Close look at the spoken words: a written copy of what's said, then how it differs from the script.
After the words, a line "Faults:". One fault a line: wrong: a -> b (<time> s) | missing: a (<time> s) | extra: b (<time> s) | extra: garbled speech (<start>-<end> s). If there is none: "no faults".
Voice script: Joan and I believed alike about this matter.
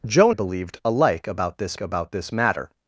Joan believed alike about this about this matter.
Faults:
wrong: and I believed alike -> believed alike about this (0.3 s)